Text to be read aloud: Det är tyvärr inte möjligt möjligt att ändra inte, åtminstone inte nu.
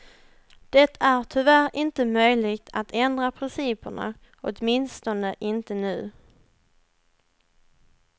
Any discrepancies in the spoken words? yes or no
yes